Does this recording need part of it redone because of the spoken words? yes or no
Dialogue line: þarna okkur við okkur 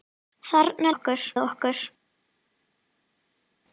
no